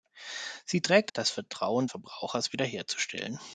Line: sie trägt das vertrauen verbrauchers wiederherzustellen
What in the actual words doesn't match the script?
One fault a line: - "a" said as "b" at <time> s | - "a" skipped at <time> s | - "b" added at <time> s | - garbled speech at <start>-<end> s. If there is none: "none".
none